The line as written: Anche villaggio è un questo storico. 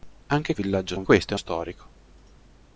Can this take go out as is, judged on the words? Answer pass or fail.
pass